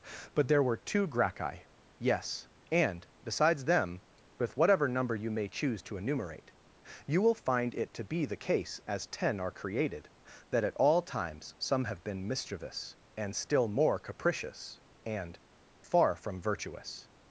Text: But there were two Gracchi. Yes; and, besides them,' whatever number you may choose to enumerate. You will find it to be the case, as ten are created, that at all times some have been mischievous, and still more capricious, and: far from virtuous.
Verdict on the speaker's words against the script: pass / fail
fail